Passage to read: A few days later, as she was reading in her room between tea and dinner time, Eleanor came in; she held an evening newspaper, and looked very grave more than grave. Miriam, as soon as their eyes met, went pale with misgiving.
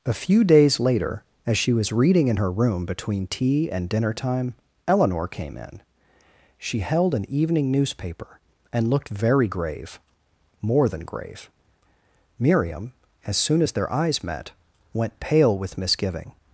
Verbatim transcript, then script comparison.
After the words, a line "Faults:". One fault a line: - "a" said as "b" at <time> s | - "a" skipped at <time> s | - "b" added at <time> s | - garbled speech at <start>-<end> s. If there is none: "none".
A few days later, as she was reading in her room between tea and dinner time, Eleanor came in; she held an evening newspaper, and looked very grave more than grave. Miriam, as soon as their eyes met, went pale with misgiving.
Faults:
none